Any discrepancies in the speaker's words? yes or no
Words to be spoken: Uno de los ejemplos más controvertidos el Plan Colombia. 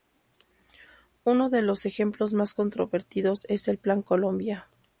yes